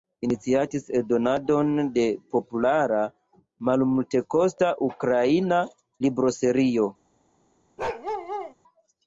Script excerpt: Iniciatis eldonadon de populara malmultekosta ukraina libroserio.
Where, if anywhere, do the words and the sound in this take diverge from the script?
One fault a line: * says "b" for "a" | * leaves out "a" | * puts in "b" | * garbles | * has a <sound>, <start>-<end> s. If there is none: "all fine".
* has a bark, 7.8-8.5 s